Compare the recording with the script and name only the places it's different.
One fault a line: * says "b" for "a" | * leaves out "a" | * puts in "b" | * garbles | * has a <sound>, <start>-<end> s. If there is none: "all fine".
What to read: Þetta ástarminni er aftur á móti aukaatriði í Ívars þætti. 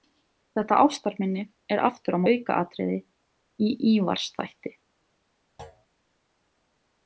* leaves out "móti"
* has a thud, 5.6-5.9 s